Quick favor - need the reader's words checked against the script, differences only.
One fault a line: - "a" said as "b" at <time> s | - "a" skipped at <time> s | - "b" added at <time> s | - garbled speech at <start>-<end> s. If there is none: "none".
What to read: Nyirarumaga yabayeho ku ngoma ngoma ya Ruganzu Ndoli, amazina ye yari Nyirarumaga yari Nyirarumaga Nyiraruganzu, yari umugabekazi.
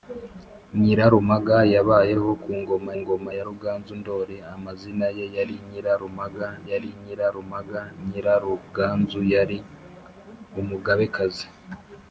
none